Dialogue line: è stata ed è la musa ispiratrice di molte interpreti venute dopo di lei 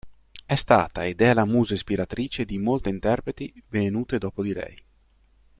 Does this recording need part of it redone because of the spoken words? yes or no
no